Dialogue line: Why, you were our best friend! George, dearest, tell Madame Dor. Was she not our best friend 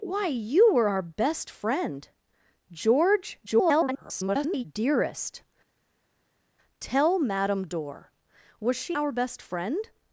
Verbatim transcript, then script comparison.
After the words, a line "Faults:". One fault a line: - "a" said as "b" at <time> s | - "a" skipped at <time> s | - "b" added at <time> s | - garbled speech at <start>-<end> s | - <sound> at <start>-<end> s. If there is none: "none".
Why, you were our best friend! George, [garbled] dearest, tell Madame Dor. Was she our best friend
Faults:
- garbled speech at 3.5-4.6 s
- "not" skipped at 9.0 s